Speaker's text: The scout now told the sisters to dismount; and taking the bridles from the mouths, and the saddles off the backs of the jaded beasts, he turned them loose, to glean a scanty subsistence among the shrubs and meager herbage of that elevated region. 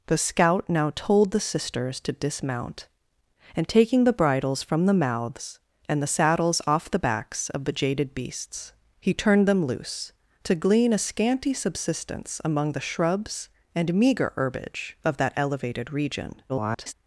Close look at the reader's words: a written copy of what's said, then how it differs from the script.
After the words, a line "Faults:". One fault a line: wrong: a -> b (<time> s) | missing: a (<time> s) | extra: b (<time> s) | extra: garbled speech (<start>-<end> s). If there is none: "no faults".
The scout now told the sisters to dismount; and taking the bridles from the mouths, and the saddles off the backs of the jaded beasts, he turned them loose, to glean a scanty subsistence among the shrubs and meager herbage of that elevated region. [garbled]
Faults:
extra: garbled speech (16.5-16.9 s)